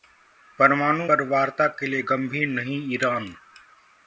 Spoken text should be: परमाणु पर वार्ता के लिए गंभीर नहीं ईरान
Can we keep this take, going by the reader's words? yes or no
yes